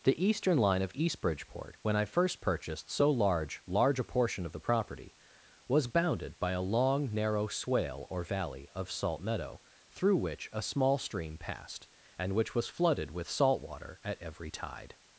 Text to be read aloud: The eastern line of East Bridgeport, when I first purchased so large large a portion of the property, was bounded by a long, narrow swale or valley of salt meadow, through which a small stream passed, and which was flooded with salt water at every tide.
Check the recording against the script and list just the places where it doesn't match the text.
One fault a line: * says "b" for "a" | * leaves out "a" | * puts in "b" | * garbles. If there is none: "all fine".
all fine